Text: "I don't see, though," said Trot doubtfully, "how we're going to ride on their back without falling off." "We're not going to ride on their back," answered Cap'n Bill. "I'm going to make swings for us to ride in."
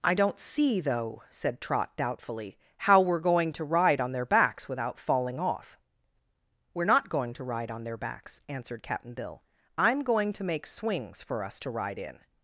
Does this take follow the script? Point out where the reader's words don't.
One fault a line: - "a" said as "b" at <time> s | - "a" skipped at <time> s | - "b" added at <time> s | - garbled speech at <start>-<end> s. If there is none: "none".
- "back" said as "backs" at 4.2 s
- "back" said as "backs" at 8.0 s